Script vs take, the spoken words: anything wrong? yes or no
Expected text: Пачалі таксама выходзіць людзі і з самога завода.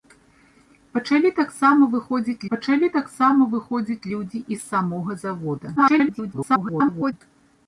yes